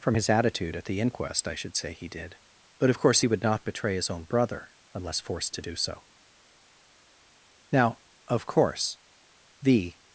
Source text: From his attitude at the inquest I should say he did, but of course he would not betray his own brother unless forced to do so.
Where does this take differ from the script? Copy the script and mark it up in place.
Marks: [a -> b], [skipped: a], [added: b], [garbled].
From his attitude at the inquest I should say he did, but of course he would not betray his own brother unless forced to do so. [added: Now of course the]